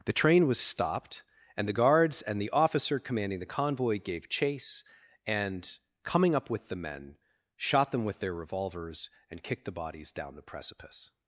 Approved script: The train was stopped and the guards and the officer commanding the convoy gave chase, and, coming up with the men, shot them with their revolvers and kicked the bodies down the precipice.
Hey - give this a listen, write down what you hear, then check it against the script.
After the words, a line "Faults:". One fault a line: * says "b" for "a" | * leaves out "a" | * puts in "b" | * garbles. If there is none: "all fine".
The train was stopped and the guards and the officer commanding the convoy gave chase, and, coming up with the men, shot them with their revolvers and kicked the bodies down the precipice.
Faults:
all fine